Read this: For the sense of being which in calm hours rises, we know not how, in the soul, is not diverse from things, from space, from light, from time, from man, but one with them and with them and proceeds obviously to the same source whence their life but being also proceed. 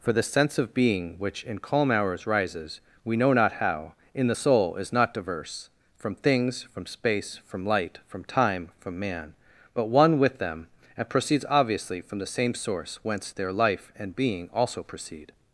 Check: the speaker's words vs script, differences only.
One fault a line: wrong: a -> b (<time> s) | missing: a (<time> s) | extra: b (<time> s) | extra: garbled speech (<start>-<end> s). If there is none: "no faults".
missing: with them and (11.1 s)
wrong: to -> from (12.0 s)
wrong: but -> and (13.9 s)